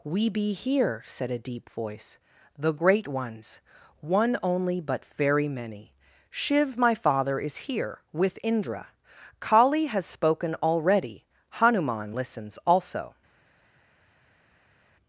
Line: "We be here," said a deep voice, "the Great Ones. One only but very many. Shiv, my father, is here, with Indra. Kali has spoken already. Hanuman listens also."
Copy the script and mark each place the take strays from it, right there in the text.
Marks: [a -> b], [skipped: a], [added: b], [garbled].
"We be here," said a deep voice, "the Great Ones. One only but very many. Shiv, my father, is here, with Indra. Kali has spoken already. Hanuman listens also."